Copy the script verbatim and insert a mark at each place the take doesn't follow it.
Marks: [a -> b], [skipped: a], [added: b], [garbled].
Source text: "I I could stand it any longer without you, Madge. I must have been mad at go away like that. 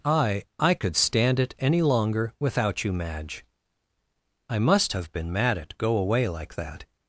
"I I could stand it any longer without you, Madge. I must have been mad at go away like that.